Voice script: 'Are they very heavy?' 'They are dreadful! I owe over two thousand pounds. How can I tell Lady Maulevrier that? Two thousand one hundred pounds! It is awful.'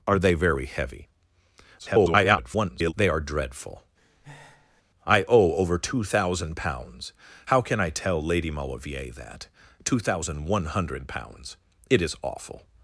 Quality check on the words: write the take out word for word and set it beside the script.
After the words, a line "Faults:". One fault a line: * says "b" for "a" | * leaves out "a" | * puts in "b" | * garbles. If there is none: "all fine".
'Are they very heavy?' [garbled] 'They are dreadful! I owe over two thousand pounds. How can I tell Lady Maulevrier that? Two thousand one hundred pounds! It is awful.'
Faults:
* garbles